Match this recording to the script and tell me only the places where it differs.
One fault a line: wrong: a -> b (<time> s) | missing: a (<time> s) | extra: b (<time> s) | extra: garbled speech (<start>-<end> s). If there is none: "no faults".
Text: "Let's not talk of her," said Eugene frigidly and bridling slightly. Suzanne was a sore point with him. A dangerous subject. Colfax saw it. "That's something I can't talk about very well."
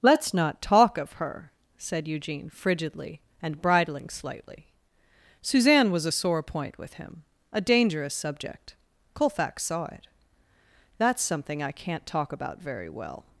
no faults